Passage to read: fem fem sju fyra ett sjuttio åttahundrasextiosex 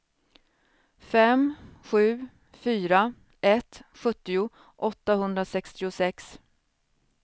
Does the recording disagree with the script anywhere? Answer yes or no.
yes